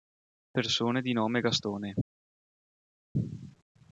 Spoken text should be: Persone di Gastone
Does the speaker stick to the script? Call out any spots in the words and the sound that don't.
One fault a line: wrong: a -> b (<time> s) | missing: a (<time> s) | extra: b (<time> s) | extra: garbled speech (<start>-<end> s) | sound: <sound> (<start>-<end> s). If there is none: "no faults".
extra: nome (1.1 s)